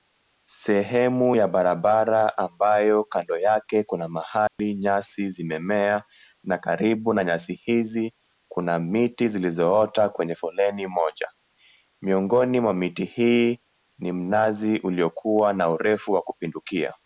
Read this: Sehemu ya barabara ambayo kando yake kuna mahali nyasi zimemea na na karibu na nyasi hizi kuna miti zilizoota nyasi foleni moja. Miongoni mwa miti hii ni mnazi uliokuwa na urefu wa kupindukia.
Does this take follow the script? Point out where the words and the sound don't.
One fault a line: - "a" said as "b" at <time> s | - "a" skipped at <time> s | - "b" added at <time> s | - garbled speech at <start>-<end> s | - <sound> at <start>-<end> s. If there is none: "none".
- dropout at 4.5-4.6 s
- "na" skipped at 6.6 s
- "nyasi" said as "kwenye" at 10.1 s